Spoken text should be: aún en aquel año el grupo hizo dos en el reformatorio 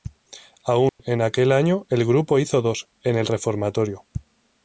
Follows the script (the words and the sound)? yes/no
no